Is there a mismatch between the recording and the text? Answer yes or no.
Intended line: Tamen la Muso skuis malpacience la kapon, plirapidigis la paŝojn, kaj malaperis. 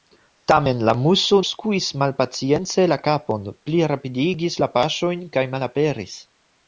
no